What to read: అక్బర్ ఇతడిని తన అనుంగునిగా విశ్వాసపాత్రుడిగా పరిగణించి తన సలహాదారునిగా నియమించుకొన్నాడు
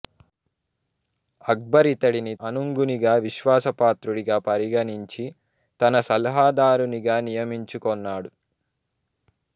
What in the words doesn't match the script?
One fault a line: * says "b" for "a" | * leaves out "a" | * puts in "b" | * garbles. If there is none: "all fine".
* leaves out "తన"